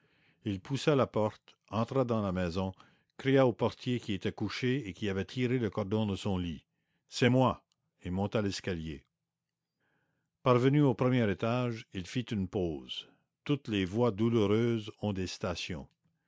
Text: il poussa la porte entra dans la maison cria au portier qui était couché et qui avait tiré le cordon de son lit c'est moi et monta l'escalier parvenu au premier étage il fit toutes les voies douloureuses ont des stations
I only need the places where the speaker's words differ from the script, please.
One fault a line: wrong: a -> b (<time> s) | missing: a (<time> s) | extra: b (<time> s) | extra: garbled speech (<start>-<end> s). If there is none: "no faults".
extra: une pause (12.3 s)